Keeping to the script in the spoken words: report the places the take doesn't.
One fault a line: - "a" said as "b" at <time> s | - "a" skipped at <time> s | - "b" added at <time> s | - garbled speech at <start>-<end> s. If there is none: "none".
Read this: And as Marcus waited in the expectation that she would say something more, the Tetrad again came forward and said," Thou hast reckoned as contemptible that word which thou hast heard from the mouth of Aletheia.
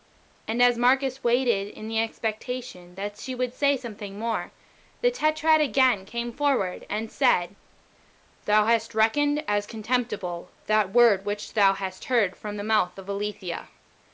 none